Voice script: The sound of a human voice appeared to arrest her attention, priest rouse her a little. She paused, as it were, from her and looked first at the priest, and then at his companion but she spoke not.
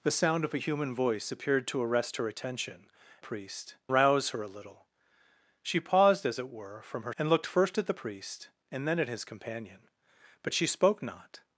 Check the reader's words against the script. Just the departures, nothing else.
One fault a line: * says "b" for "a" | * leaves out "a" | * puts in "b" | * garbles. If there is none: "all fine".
all fine